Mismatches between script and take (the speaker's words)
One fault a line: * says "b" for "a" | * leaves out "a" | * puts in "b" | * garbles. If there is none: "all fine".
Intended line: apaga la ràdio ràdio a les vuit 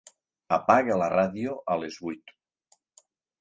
* leaves out "ràdio"